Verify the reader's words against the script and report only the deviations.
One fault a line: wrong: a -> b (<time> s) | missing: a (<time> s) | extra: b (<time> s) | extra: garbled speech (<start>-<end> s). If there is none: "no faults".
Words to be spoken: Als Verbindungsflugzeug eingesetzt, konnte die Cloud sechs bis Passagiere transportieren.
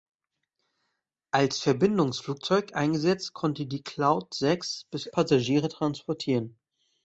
no faults